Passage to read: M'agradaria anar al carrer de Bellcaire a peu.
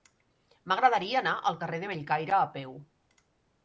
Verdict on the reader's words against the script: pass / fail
pass